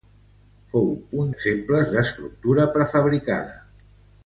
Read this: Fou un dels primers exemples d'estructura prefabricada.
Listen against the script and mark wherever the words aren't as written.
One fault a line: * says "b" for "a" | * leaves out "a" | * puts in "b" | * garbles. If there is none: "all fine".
* leaves out "dels primers"